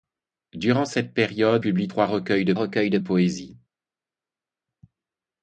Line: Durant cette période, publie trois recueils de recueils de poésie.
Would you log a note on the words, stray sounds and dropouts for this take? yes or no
no